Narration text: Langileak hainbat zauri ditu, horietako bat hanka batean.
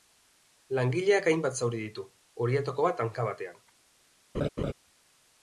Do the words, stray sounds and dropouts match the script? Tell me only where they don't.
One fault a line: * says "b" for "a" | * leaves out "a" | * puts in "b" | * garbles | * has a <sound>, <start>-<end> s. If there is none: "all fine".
* has a laugh, 4.3-4.7 s